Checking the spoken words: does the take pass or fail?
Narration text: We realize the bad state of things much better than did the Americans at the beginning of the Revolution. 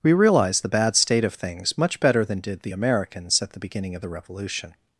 pass